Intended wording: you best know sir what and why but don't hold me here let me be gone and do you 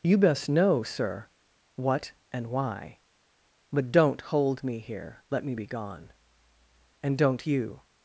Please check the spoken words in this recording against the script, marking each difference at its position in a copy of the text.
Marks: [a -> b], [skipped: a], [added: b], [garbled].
you best know sir what and why but don't hold me here let me be gone and [do -> don't] you